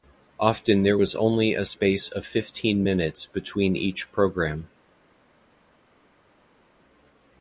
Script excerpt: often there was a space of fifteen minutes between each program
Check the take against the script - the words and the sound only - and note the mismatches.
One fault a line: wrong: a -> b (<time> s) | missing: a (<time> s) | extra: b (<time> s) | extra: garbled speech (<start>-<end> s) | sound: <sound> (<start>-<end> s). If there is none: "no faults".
extra: only (1.1 s)